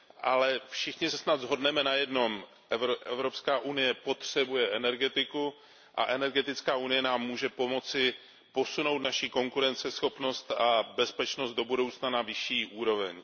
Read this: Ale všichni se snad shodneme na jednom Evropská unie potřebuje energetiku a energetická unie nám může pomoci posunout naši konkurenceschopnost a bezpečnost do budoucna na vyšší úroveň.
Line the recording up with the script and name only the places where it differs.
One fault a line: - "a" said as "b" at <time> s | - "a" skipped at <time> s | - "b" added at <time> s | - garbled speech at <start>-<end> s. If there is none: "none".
none